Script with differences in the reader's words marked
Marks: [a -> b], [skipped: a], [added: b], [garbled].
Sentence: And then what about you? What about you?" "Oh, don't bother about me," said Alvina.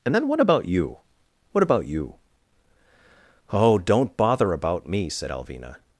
And then what about you? What about you?" "Oh, don't bother about me," said Alvina.